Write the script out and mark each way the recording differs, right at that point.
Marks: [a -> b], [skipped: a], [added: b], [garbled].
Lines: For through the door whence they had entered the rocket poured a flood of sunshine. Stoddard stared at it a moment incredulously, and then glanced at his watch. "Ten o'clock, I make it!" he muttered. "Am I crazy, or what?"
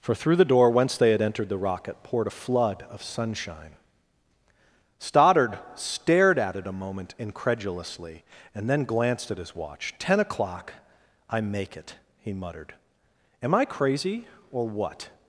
For through the door whence they had entered the rocket poured a flood of sunshine. Stoddard stared at it a moment incredulously, and then glanced at his watch. "Ten o'clock, I make it!" he muttered. "Am I crazy, or what?"